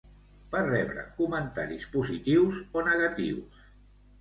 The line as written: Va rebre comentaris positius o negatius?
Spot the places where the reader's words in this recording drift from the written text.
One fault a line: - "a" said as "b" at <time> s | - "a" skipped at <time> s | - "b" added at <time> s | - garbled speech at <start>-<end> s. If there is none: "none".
none